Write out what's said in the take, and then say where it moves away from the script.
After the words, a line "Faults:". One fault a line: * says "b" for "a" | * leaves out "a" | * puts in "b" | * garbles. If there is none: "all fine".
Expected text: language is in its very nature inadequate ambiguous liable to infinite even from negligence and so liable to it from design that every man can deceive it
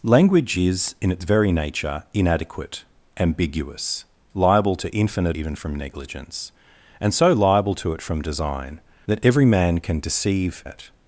language is in its very nature inadequate ambiguous liable to infinite even from negligence and so liable to it from design that every man can deceive it
Faults:
all fine